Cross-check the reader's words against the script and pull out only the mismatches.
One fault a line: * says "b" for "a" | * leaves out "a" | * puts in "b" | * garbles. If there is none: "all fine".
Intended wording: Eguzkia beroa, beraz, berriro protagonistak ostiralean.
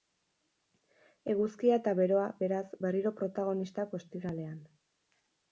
* puts in "eta"